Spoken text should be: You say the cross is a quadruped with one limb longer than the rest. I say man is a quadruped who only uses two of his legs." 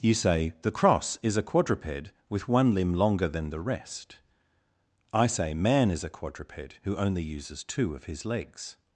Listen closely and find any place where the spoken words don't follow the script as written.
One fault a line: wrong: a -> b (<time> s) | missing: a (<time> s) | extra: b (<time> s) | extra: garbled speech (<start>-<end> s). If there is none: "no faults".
no faults